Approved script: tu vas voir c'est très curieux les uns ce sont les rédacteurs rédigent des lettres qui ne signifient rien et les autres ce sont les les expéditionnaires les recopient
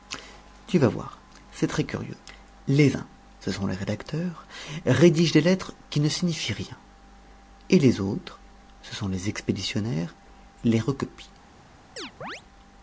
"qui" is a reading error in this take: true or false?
false